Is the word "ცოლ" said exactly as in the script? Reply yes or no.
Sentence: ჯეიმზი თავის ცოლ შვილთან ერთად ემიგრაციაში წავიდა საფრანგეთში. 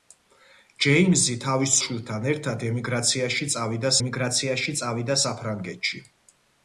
no